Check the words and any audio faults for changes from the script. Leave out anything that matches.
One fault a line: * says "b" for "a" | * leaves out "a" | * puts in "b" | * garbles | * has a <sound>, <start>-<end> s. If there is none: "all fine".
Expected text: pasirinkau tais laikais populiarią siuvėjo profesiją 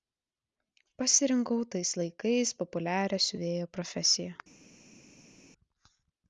all fine